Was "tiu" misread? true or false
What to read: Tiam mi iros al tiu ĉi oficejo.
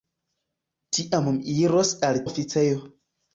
true